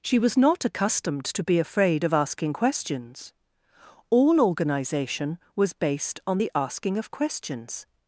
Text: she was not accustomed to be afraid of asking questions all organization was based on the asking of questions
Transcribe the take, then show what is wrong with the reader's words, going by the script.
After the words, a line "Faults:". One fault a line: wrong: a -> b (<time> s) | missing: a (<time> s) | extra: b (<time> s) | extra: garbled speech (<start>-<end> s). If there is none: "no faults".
she was not accustomed to be afraid of asking questions all organization was based on the asking of questions
Faults:
no faults